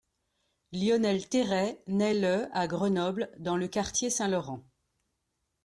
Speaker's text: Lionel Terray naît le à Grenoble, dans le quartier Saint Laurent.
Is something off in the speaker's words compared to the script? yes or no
no